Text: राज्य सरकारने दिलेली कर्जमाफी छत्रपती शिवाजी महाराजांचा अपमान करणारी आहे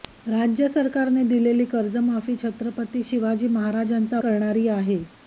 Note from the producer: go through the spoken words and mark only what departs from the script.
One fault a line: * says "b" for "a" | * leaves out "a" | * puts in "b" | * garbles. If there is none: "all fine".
* leaves out "अपमान"